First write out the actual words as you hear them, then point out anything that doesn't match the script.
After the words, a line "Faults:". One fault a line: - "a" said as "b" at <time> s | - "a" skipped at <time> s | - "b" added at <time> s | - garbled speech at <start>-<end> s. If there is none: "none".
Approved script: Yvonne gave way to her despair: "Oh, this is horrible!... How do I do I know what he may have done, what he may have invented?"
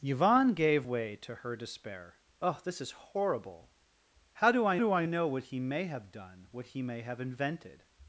Yvonne gave way to her despair: "Oh, this is horrible!... How do I do I know what he may have done, what he may have invented?"
Faults:
none